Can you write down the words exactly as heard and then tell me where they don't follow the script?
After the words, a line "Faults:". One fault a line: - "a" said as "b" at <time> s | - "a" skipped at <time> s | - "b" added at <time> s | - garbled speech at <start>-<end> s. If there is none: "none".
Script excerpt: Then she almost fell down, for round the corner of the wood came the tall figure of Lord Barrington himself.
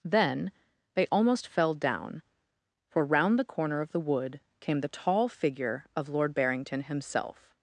Then they almost fell down, for round the corner of the wood came the tall figure of Lord Barrington himself.
Faults:
- "she" said as "they" at 0.9 s